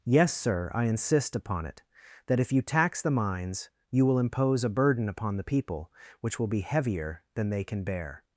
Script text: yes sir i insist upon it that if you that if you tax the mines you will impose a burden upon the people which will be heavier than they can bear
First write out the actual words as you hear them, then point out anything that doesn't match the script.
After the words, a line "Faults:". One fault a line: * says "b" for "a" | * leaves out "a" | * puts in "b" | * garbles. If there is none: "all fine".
yes sir i insist upon it that if you tax the mines you will impose a burden upon the people which will be heavier than they can bear
Faults:
* leaves out "that if you"